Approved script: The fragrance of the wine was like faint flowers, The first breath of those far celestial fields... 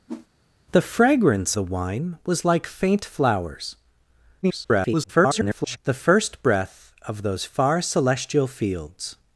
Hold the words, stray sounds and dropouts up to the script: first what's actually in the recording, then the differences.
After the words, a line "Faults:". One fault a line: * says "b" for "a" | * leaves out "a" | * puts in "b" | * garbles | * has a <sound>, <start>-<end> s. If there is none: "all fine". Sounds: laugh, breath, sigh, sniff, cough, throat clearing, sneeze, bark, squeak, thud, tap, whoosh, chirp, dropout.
The fragrance the wine was like faint flowers, [garbled] The first breath of those far celestial fields...
Faults:
* has a whoosh, 0.1-0.3 s
* leaves out "of"
* garbles